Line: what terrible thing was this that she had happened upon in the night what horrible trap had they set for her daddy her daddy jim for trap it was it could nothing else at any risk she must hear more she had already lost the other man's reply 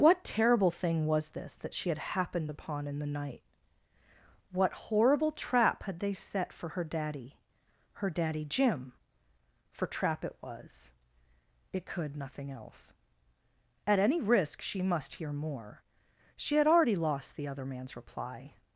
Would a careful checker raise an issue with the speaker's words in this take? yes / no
no